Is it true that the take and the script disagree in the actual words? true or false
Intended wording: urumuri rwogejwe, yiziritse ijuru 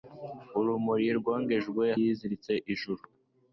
false